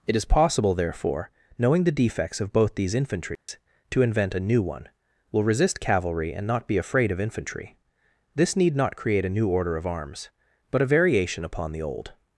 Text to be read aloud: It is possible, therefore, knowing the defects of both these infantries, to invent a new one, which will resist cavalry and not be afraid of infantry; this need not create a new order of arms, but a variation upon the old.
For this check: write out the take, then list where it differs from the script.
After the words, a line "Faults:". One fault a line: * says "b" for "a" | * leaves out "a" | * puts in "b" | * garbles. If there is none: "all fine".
It is possible, therefore, knowing the defects of both these infantries, to invent a new one, will resist cavalry and not be afraid of infantry; this need not create a new order of arms, but a variation upon the old.
Faults:
* leaves out "which"